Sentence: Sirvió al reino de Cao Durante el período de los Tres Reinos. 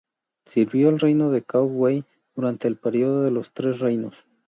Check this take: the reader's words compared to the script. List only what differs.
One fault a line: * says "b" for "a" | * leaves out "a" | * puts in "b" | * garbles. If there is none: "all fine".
* puts in "Wei"